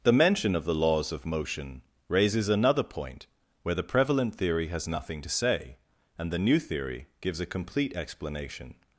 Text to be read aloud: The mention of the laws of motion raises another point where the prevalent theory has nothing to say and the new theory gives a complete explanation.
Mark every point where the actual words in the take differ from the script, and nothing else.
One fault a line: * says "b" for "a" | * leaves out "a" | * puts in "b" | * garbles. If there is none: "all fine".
all fine